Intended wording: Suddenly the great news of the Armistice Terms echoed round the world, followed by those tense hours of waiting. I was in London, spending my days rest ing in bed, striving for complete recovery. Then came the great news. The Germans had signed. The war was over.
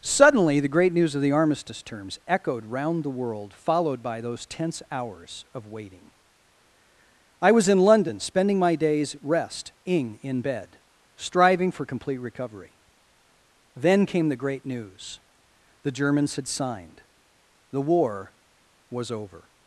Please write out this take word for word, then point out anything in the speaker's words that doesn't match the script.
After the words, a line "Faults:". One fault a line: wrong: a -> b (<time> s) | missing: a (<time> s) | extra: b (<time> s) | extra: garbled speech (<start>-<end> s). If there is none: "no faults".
Suddenly the great news of the Armistice Terms echoed round the world, followed by those tense hours of waiting. I was in London, spending my days rest ing in bed, striving for complete recovery. Then came the great news. The Germans had signed. The war was over.
Faults:
no faults